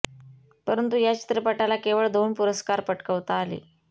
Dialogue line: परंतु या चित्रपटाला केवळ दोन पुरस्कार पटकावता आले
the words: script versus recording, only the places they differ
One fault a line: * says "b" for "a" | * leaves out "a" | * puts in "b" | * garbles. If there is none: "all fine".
all fine